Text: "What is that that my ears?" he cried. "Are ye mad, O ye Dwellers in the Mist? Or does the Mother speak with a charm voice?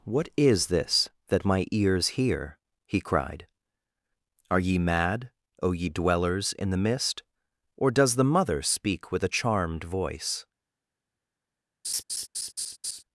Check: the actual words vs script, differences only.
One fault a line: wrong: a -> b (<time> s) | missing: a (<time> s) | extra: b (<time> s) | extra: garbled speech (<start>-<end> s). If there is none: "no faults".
wrong: that -> this (0.7 s)
extra: hear (2.2 s)
wrong: charm -> charmed (9.3 s)